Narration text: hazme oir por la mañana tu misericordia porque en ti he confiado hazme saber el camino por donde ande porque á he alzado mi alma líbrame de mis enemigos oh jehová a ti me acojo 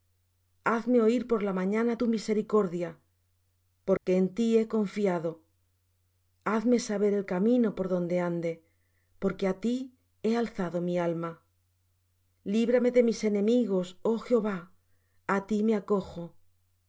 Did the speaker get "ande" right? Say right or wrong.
right